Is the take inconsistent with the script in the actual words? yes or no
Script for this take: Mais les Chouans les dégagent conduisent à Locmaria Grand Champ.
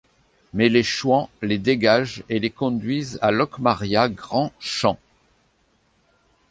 yes